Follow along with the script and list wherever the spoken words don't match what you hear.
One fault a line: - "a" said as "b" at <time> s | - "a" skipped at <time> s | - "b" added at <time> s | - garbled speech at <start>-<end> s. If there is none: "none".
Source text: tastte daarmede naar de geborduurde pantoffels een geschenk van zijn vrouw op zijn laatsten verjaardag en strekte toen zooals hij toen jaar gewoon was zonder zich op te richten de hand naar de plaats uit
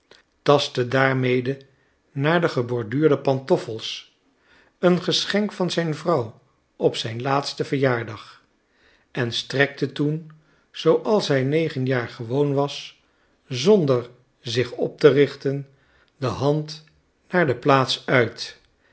- "toen" said as "negen" at 11.4 s